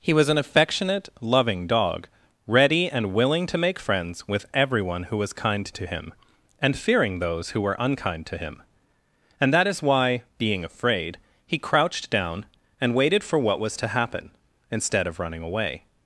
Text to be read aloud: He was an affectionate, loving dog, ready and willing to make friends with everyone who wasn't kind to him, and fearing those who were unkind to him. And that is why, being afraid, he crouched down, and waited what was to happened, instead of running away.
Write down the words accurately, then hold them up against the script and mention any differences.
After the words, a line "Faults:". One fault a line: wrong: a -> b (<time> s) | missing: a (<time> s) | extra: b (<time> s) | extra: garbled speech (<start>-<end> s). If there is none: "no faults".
He was an affectionate, loving dog, ready and willing to make friends with everyone who was kind to him, and fearing those who were unkind to him. And that is why, being afraid, he crouched down, and waited for what was to happen, instead of running away.
Faults:
wrong: wasn't -> was (5.2 s)
extra: for (13.2 s)
wrong: happened -> happen (13.9 s)